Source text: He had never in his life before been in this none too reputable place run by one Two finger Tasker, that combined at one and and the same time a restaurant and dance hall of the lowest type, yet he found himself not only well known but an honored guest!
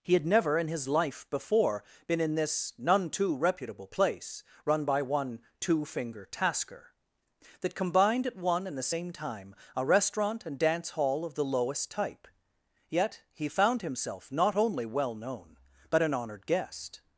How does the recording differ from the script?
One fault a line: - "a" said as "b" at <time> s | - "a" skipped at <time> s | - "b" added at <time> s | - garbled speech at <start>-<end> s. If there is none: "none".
- "and" skipped at 8.8 s